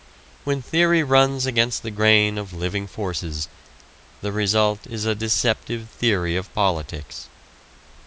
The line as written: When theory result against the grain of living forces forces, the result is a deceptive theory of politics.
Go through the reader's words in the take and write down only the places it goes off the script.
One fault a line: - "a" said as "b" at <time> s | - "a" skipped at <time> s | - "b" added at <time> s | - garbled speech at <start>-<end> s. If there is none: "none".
- "result" said as "runs" at 1.0 s
- "forces" skipped at 3.5 s